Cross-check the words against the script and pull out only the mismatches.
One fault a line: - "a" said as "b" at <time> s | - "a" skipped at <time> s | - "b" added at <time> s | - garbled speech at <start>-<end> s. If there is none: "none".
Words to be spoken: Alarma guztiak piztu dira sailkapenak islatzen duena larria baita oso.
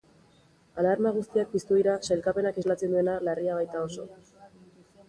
none